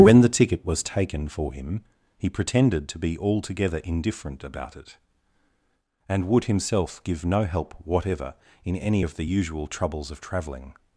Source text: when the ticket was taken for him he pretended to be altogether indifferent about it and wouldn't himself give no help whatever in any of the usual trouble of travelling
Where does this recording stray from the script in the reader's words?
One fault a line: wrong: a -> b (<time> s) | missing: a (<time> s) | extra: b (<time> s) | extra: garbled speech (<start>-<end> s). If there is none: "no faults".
wrong: wouldn't -> would (6.3 s)
wrong: trouble -> troubles (9.7 s)